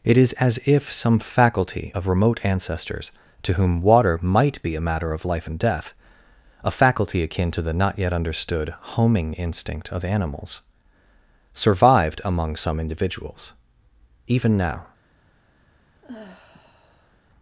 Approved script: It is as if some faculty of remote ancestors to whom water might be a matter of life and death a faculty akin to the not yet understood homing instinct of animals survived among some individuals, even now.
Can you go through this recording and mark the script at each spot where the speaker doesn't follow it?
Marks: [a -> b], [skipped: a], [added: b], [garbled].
It is as if some faculty of remote ancestors to whom water might be a matter of life and death a faculty akin to the not yet understood homing instinct of animals survived among some individuals, even now.